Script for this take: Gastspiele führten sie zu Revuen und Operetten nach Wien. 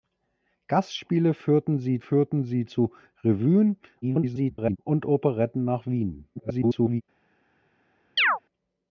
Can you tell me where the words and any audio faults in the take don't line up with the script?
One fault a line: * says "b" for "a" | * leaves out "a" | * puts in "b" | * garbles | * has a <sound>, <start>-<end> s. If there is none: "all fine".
* puts in "führten sie"
* garbles
* garbles
* has a chirp, 8.2-8.4 s